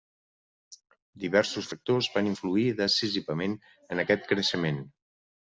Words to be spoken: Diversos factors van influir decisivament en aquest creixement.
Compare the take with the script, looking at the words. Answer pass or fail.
pass